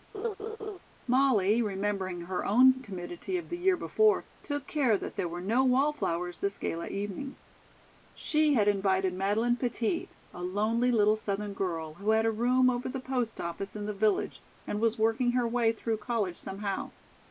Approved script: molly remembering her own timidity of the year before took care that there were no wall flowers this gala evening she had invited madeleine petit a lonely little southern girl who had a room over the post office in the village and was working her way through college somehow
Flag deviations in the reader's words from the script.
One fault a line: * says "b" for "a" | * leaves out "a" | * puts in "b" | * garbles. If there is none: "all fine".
all fine